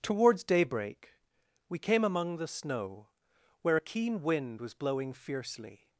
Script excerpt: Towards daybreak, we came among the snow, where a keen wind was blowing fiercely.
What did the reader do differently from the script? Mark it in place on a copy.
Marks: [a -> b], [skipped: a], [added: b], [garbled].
Towards daybreak, we came among the snow, where a keen wind was blowing fiercely.